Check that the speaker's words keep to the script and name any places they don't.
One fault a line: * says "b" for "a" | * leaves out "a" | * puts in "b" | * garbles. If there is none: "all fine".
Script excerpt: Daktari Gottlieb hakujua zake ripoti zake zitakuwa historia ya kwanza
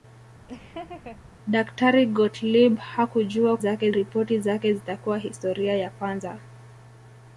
all fine